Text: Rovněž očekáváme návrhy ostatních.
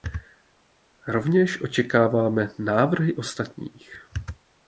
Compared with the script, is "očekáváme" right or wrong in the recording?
right